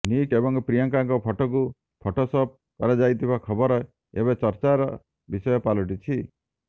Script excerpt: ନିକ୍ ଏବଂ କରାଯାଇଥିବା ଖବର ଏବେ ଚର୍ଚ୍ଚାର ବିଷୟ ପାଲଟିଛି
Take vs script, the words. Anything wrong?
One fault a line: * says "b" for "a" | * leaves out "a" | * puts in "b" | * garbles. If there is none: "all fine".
* puts in "ପ୍ରିୟଙ୍କାଙ୍କ ଫଟୋକୁ ଫଟୋସପ୍"